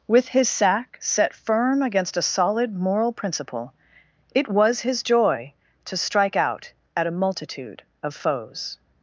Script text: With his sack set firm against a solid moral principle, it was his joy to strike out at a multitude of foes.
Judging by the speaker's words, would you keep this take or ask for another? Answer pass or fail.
pass